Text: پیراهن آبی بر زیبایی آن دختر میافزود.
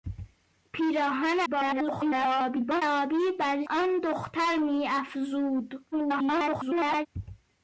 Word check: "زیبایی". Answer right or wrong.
wrong